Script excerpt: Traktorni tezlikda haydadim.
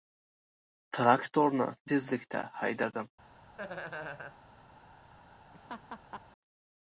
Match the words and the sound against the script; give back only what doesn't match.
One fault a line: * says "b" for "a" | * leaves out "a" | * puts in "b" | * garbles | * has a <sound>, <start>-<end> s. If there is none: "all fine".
* has a laugh, 3.6-4.4 s
* has a laugh, 5.5-6.2 s